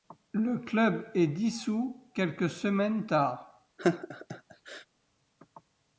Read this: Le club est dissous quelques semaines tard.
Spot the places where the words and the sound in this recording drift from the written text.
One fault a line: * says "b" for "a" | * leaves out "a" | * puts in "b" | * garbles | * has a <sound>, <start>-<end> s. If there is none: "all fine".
* has a laugh, 3.8-4.9 s